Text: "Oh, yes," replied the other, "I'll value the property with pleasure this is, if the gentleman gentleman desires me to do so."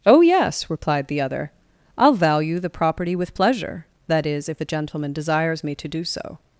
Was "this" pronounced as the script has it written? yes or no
no